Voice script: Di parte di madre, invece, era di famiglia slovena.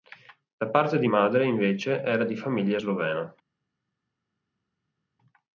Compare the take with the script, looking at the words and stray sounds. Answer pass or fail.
fail